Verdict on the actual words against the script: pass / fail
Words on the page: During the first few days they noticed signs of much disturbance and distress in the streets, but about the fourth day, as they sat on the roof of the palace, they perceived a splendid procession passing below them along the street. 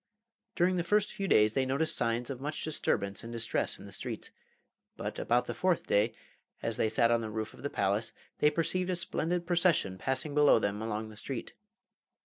pass